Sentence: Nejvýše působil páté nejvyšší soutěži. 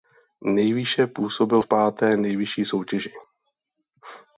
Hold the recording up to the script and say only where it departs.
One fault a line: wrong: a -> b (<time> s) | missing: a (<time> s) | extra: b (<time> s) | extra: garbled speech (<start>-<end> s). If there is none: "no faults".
extra: v (1.6 s)